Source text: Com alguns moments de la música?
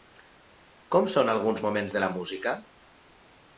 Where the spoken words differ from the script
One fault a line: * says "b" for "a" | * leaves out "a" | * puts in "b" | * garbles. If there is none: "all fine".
* puts in "són"